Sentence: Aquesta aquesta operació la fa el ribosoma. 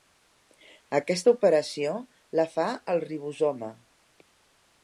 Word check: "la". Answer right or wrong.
right